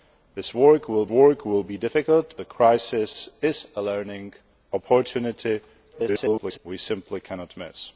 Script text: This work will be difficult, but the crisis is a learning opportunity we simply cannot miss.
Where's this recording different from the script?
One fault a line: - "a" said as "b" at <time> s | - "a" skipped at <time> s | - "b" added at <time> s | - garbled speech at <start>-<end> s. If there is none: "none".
- "work will" added at 1.1 s
- "but" skipped at 2.3 s
- garbled speech at 5.9-6.6 s